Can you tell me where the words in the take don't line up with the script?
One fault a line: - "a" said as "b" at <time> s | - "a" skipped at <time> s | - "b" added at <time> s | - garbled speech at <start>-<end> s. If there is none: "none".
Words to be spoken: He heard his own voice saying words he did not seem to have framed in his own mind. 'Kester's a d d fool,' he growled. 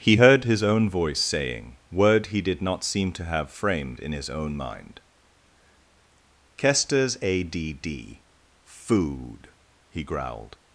- "words" said as "word" at 1.9 s
- "fool" said as "food" at 8.7 s